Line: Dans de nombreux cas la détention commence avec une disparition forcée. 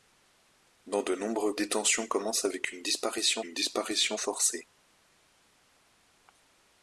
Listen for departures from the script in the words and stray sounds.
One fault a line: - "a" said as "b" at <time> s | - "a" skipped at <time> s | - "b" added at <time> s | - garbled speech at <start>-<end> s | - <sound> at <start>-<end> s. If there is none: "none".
- "cas la" skipped at 1.6 s
- "une disparition" added at 3.4 s